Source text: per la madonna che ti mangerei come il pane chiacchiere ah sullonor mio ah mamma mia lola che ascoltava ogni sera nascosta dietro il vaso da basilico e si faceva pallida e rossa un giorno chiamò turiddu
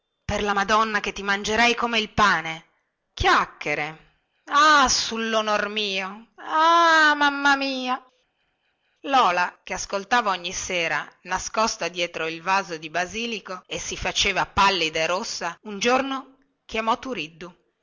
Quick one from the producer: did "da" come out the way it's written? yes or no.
no